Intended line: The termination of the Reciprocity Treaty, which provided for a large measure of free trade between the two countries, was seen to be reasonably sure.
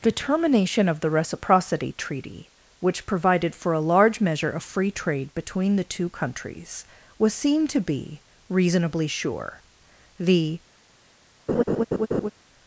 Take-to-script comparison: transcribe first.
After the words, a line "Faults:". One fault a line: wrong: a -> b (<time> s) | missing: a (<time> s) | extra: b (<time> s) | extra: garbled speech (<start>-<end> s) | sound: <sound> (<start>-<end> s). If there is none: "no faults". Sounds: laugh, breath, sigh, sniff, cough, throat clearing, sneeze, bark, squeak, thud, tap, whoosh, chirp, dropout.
The termination of the Reciprocity Treaty, which provided for a large measure of free trade between the two countries, was seen to be reasonably sure. The
Faults:
extra: The (10.2 s)
sound: laugh (11.5-12.3 s)